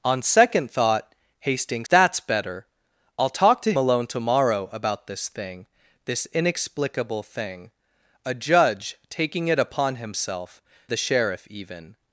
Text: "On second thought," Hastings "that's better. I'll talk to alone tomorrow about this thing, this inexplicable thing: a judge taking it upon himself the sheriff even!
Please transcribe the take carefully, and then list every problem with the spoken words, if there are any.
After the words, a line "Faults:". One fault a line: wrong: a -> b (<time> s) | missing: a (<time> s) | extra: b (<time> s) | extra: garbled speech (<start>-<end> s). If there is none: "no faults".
"On second thought," Hastings "that's better. I'll talk to alone tomorrow about this thing, this inexplicable thing: a judge taking it upon himself the sheriff even!
Faults:
no faults